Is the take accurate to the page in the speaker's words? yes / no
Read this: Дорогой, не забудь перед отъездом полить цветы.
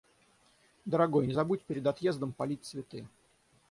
yes